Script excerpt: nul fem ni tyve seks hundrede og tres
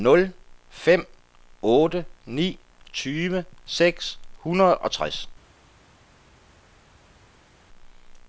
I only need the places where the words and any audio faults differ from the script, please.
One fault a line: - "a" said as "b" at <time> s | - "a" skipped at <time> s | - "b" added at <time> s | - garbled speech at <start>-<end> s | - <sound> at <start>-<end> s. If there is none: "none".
- "otte" added at 1.6 s